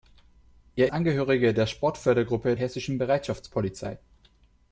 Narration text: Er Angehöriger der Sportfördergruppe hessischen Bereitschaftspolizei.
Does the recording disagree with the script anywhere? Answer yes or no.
no